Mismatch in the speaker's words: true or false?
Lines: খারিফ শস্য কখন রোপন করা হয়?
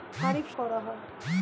true